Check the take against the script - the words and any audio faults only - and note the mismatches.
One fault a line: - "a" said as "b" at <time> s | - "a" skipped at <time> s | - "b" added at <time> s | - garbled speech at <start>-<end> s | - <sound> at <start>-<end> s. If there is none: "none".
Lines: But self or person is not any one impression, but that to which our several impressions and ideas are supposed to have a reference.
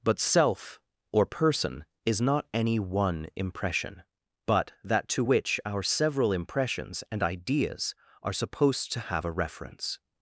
none